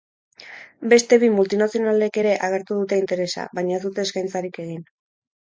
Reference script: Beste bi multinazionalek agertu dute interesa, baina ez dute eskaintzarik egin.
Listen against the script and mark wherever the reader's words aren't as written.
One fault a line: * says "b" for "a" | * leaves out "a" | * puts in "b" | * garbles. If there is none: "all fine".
* puts in "ere"